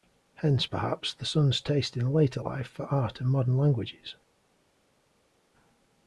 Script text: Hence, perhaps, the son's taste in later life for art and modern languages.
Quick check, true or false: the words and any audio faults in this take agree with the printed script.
true